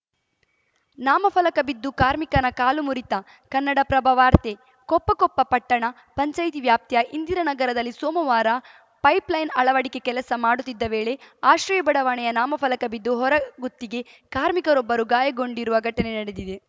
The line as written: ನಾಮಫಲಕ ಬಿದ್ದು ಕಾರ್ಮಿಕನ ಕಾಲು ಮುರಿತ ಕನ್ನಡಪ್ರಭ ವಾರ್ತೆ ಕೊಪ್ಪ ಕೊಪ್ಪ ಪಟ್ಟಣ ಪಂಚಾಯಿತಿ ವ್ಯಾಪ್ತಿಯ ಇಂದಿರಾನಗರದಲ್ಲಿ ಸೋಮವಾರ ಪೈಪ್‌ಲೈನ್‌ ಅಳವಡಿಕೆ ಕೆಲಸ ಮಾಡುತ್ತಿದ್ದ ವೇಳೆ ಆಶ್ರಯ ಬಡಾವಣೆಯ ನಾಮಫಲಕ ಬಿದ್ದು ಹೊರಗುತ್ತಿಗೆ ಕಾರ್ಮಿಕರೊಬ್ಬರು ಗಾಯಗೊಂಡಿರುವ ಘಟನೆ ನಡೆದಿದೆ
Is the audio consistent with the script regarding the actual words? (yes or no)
yes